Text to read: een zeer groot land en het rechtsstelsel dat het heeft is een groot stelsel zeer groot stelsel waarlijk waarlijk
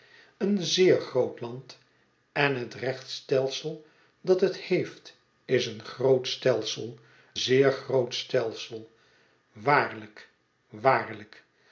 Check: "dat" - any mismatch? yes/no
no